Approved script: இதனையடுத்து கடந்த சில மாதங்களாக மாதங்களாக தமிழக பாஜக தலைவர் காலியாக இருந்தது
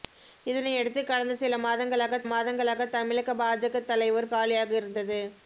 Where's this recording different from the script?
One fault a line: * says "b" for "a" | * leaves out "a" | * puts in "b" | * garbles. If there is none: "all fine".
all fine